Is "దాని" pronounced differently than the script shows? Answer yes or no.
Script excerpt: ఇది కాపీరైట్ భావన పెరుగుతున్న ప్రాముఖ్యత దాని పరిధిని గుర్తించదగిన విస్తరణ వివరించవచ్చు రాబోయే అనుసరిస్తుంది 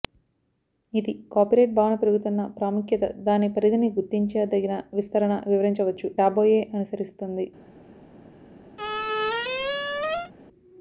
no